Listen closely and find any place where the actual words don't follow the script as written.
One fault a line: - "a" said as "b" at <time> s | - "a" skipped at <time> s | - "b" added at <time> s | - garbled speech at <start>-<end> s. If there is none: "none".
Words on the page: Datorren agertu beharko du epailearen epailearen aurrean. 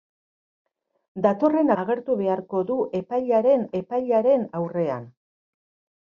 none